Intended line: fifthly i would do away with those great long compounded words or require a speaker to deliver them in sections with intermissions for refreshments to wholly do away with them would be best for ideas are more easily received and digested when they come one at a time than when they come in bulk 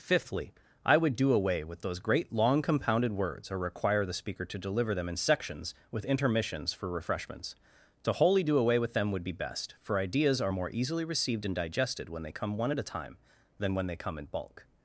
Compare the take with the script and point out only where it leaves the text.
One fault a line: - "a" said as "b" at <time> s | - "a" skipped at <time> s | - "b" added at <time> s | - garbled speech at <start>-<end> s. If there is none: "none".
- "a" said as "the" at 4.0 s